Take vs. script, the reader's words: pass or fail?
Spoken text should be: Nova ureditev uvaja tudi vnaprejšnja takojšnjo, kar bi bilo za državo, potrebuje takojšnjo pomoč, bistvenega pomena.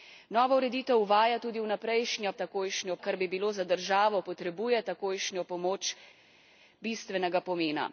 pass